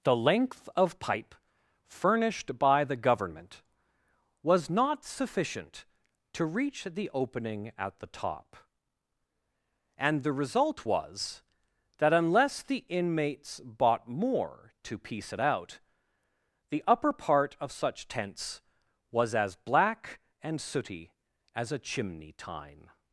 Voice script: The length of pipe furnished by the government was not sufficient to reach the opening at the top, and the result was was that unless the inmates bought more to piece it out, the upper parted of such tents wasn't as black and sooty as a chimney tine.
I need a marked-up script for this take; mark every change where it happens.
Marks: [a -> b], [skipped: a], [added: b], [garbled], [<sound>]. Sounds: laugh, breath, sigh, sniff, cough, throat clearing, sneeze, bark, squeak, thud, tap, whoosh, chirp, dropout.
The length of pipe furnished by the government was not sufficient to reach the opening at the top, and the result was [skipped: was] that unless the inmates bought more to piece it out, the upper [parted -> part] of such tents [wasn't -> was] as black and sooty as a chimney tine.